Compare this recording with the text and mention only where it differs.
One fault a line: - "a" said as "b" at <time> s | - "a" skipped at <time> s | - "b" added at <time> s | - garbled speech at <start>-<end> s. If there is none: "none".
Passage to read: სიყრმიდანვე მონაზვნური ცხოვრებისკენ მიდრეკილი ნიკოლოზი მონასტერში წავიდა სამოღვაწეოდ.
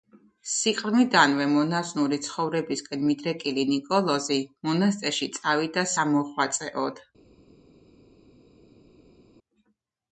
none